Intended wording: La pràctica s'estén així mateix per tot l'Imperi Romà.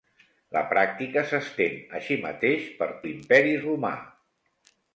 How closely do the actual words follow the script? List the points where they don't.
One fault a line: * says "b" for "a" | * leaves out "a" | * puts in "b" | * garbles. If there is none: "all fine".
* leaves out "tot"